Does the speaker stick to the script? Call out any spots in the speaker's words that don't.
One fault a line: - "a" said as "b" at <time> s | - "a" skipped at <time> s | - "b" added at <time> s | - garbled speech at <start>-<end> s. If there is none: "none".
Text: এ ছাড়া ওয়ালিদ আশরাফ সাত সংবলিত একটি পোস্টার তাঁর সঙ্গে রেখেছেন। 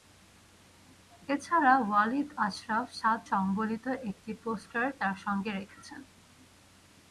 none